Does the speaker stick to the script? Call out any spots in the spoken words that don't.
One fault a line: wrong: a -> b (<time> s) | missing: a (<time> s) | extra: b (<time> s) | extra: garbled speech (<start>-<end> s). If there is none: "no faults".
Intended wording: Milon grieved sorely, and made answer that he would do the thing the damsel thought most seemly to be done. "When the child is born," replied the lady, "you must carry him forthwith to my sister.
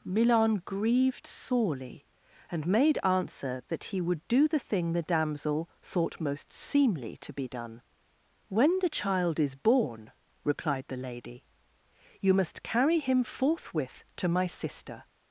no faults